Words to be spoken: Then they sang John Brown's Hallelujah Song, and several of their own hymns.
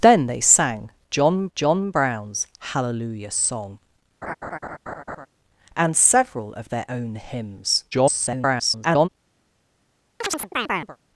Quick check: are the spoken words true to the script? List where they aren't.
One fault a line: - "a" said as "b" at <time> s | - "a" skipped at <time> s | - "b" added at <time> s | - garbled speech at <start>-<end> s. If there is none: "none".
- "John" added at 1.6 s
- garbled speech at 7.9-9.1 s